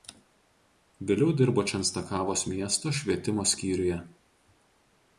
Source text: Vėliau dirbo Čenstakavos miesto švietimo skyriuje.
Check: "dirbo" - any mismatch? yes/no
no